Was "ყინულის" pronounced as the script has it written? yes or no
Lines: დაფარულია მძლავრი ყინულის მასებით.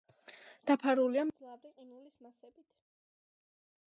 yes